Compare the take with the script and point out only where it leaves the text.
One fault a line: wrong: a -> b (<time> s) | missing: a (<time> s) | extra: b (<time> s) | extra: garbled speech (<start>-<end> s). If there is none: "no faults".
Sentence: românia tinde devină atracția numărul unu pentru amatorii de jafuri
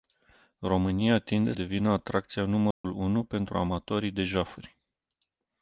no faults